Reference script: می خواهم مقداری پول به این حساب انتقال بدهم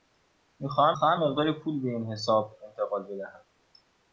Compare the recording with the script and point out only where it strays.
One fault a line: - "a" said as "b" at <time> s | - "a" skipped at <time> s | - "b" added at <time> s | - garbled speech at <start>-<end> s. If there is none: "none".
- "خواهم" added at 0.9 s